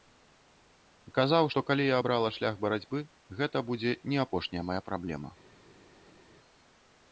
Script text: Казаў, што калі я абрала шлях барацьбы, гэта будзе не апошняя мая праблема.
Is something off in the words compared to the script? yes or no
no